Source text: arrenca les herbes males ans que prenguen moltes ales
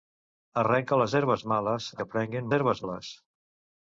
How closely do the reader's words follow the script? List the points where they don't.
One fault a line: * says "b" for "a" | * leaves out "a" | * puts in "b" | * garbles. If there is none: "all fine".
* leaves out "ans"
* says "herbes" for "moltes"